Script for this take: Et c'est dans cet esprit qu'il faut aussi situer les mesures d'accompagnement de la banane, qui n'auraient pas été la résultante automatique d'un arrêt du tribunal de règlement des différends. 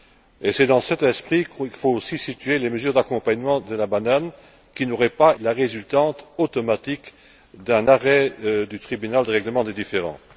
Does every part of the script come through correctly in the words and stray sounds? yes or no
no